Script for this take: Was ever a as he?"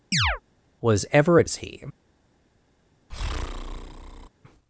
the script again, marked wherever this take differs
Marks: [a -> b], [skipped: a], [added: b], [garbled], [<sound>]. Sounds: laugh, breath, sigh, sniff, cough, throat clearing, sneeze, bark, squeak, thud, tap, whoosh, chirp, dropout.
[chirp] Was ever a as he?" [breath]